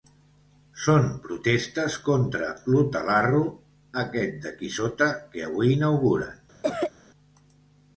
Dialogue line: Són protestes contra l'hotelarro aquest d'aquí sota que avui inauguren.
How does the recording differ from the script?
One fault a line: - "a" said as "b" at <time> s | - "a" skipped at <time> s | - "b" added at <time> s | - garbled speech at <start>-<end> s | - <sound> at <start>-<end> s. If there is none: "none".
- cough at 6.6-6.9 s